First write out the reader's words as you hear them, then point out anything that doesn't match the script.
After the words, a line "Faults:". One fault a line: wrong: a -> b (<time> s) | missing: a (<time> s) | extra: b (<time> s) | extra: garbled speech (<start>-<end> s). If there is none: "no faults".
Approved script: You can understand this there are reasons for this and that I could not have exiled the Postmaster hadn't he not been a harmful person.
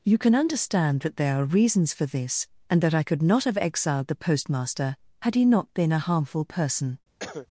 You can understand that there are reasons for this and that I could not have exiled the Postmaster had he not been a harmful person.
Faults:
wrong: this -> that (1.0 s)
wrong: hadn't -> had (5.2 s)